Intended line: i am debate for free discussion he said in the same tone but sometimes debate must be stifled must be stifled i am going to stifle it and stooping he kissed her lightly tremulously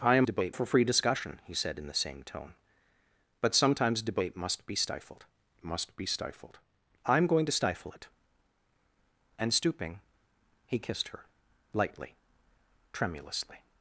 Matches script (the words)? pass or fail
pass